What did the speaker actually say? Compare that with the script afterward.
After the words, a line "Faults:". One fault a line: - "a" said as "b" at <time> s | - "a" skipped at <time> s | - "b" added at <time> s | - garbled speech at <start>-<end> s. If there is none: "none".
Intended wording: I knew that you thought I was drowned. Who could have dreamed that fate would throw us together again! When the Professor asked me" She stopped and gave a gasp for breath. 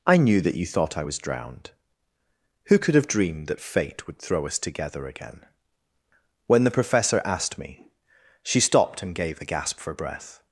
I knew that you thought I was drowned. Who could have dreamed that fate would throw us together again! When the Professor asked me" She stopped and gave a gasp for breath.
Faults:
none